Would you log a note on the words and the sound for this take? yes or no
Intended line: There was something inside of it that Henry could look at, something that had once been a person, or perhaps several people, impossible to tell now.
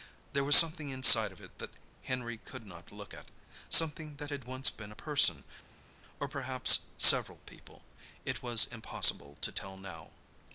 yes